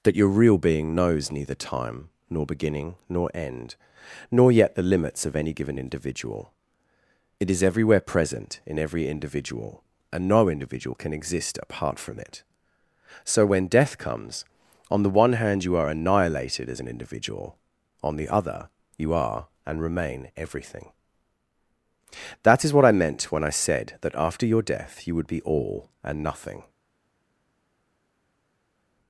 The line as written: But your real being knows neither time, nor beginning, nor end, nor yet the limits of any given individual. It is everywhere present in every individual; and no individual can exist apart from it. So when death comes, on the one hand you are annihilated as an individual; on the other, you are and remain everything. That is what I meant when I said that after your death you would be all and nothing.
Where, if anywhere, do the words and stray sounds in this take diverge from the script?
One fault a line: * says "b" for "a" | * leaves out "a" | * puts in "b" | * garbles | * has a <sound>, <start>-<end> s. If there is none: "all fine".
* says "That" for "But"